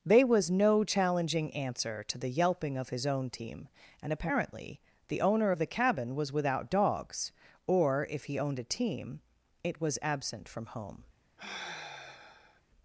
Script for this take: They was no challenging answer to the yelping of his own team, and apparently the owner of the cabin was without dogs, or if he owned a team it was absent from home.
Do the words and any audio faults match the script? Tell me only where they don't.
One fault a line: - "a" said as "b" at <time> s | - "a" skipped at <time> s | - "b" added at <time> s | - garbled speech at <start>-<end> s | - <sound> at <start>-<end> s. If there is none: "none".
- sigh at 11.4-12.6 s